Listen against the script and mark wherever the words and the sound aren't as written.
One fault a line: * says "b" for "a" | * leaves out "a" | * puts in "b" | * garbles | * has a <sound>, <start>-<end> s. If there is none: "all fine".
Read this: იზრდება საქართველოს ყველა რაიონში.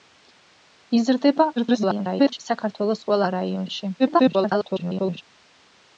* garbles
* garbles